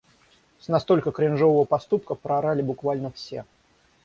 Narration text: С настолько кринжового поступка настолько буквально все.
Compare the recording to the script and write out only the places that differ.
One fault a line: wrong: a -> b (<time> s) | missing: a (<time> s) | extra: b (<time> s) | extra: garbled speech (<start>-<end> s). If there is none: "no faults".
wrong: настолько -> проорали (2.1 s)